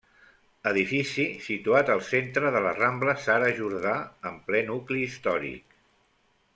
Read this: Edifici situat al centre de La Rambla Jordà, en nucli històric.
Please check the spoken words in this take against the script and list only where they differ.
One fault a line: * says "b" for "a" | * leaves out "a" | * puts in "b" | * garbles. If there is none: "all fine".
* puts in "Sara"
* puts in "ple"